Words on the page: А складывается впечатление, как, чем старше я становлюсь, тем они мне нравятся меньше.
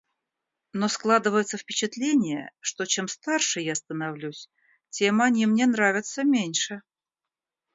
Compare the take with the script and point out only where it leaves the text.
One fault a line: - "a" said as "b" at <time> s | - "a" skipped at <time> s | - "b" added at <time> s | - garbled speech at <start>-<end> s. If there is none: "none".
- "А" said as "Но" at 0.7 s
- "как" said as "что" at 2.6 s